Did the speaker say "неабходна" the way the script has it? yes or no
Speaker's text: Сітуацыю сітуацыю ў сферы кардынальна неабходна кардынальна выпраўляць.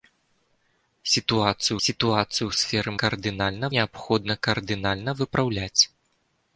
yes